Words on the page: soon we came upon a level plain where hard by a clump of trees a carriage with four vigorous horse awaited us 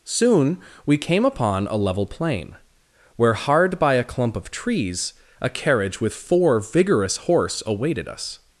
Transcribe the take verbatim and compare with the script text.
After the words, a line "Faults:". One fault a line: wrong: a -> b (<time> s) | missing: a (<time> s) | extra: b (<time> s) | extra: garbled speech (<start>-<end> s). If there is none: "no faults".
soon we came upon a level plain where hard by a clump of trees a carriage with four vigorous horse awaited us
Faults:
no faults